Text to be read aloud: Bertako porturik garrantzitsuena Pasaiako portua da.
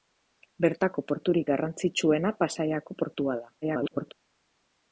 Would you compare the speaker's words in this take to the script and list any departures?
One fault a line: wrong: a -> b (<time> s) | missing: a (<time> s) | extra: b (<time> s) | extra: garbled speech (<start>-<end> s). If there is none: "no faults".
extra: garbled speech (3.6-4.1 s)